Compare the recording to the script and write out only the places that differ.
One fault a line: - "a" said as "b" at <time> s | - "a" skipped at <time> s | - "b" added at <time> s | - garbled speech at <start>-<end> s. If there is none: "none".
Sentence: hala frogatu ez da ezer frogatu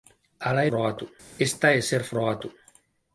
none